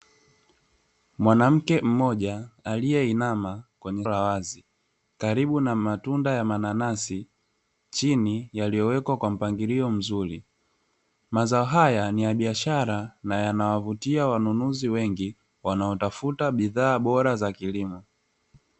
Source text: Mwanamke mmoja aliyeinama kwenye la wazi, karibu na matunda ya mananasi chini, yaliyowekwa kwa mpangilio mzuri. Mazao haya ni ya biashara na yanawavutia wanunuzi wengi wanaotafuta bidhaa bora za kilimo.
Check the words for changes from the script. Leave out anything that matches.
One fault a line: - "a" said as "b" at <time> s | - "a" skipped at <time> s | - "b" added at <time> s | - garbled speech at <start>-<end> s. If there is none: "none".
none